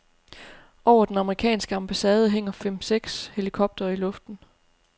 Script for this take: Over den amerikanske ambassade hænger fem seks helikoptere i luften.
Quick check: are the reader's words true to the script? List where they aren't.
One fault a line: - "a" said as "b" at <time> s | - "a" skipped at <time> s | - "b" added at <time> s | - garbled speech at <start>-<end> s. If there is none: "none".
none